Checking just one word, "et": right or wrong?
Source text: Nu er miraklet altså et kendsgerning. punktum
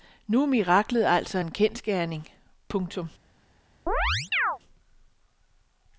wrong